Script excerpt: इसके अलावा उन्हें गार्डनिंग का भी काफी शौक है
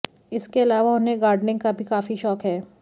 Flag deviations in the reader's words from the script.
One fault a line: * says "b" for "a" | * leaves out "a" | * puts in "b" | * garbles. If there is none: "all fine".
all fine